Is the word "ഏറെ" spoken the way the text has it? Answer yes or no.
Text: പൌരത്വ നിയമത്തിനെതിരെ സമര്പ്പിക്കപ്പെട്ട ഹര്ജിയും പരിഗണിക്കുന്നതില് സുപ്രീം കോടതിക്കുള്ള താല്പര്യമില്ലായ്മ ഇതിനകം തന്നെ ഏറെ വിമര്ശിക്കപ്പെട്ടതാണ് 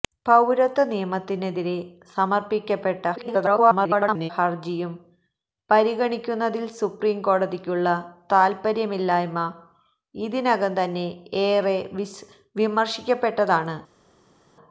yes